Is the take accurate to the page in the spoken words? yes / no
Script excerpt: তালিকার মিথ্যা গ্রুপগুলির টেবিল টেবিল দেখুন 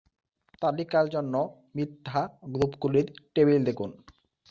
no